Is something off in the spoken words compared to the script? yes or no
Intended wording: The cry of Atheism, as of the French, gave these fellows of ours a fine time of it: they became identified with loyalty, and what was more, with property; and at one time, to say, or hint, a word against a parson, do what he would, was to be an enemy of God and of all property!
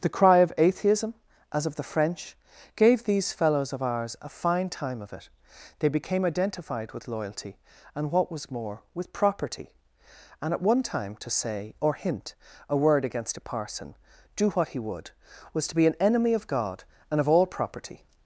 no